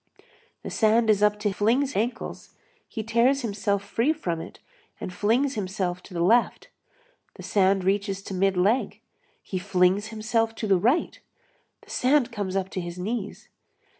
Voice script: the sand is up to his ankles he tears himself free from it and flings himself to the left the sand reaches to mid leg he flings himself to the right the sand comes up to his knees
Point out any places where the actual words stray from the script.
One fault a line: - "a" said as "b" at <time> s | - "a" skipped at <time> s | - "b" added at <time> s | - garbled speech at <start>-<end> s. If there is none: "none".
- "his" said as "flings" at 1.5 s